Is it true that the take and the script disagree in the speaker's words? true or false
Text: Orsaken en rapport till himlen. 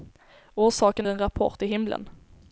false